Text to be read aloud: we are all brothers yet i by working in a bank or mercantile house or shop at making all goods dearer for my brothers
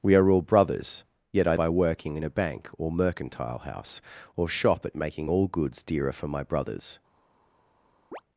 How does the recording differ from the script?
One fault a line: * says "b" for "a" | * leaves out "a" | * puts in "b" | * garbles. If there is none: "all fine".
all fine